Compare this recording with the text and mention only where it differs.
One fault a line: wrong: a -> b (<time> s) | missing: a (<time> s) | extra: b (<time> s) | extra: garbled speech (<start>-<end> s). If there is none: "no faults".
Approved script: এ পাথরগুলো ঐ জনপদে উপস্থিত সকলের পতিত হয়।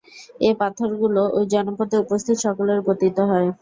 no faults